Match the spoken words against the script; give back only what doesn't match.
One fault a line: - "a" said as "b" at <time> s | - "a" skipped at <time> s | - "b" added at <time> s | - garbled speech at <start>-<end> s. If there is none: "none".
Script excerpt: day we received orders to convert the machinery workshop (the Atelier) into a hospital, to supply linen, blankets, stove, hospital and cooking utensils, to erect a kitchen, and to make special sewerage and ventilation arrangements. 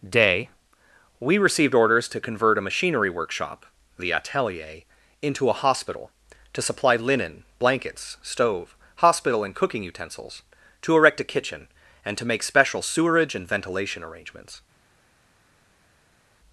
- "the" said as "a" at 2.6 s